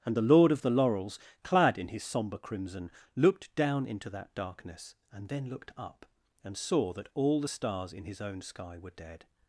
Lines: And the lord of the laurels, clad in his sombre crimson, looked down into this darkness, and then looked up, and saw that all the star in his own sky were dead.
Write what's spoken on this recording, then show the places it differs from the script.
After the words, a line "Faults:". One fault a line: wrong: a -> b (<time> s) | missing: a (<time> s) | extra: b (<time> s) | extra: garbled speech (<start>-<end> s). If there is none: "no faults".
And the lord of the laurels, clad in his sombre crimson, looked down into that darkness, and then looked up, and saw that all the stars in his own sky were dead.
Faults:
wrong: this -> that (4.1 s)
wrong: star -> stars (7.5 s)